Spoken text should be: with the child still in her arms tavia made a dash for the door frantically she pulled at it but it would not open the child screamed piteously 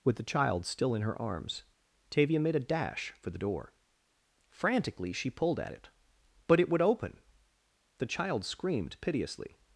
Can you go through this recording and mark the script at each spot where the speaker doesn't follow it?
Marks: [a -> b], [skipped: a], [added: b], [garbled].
with the child still in her arms tavia made a dash for the door frantically she pulled at it but it would [skipped: not] open the child screamed piteously